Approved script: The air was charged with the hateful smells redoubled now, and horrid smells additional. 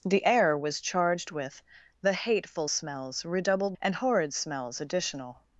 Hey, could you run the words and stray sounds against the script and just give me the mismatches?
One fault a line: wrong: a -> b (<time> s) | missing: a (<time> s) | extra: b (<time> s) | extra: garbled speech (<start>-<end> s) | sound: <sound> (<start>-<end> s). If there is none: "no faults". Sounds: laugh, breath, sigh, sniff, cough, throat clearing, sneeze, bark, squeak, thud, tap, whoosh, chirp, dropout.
missing: now (3.8 s)